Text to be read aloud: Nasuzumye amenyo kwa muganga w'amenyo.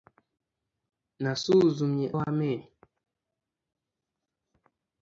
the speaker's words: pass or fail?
fail